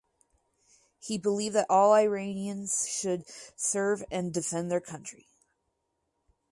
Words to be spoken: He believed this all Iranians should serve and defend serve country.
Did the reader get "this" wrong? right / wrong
wrong